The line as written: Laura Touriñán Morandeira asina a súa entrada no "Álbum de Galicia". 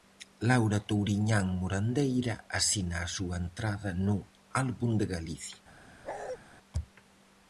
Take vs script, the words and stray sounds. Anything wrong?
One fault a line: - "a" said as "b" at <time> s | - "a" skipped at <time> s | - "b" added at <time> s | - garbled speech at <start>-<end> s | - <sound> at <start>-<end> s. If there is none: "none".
- bark at 6.0-6.4 s